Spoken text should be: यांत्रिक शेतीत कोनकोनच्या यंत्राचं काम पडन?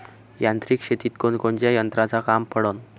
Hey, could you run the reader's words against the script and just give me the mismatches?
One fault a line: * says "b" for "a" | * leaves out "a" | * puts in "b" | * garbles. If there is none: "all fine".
all fine